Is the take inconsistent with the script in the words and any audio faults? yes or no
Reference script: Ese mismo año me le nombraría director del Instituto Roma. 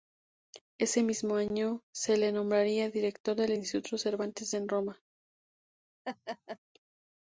yes